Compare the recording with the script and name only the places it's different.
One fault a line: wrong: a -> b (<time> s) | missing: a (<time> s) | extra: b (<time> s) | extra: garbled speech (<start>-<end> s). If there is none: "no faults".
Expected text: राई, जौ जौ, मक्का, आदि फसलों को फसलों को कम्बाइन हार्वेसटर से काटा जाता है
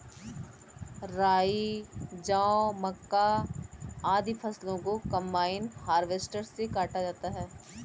missing: जौ (2.7 s)
missing: फसलों को (5.0 s)